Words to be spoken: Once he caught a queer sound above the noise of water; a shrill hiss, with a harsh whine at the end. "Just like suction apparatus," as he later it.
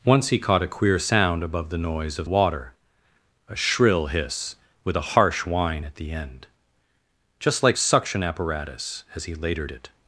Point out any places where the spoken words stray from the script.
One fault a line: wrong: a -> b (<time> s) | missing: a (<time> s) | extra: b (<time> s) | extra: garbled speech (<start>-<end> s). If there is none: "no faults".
no faults